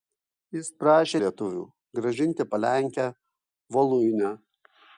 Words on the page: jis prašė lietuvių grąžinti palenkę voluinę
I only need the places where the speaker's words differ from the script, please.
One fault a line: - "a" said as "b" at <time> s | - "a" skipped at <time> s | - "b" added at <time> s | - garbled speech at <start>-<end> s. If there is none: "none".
none